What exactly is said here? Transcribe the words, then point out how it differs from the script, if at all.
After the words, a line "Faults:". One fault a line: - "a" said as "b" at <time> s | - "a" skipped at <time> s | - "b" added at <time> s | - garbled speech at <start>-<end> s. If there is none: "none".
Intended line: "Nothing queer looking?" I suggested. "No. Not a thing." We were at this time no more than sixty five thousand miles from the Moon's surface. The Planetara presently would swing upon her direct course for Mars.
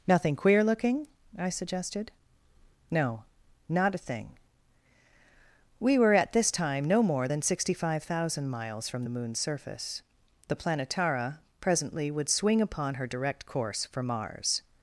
"Nothing queer looking?" I suggested. "No. Not a thing." We were at this time no more than sixty five thousand miles from the Moon's surface. The Planetara presently would swing upon her direct course for Mars.
Faults:
none